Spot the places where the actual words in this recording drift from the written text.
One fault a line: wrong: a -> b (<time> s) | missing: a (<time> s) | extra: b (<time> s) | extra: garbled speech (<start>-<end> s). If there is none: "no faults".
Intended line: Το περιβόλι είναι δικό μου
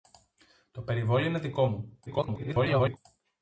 extra: garbled speech (2.1-3.0 s)